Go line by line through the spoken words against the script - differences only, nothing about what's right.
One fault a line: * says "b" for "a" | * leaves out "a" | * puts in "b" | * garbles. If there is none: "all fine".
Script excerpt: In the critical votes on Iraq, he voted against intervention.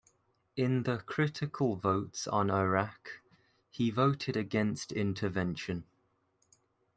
all fine